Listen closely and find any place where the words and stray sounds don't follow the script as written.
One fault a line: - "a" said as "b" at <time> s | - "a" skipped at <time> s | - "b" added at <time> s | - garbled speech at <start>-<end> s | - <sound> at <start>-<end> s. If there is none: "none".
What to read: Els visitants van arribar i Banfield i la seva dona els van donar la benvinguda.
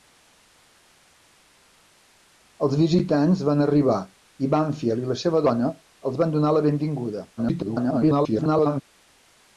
- garbled speech at 7.4-8.8 s